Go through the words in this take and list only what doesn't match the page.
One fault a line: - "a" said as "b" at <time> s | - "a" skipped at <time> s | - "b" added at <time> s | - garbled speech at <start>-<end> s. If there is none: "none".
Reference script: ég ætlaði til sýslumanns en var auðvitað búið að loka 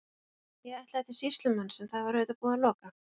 - "það" added at 1.9 s